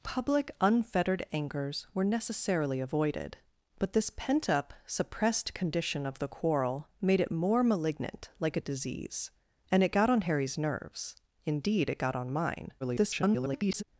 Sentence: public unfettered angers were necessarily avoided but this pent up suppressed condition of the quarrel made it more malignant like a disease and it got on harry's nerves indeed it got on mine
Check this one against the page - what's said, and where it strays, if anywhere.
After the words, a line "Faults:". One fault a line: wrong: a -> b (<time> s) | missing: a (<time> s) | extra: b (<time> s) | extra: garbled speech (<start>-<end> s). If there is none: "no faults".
public unfettered angers were necessarily avoided but this pent up suppressed condition of the quarrel made it more malignant like a disease and it got on harry's nerves indeed it got on mine [garbled]
Faults:
extra: garbled speech (12.8-13.8 s)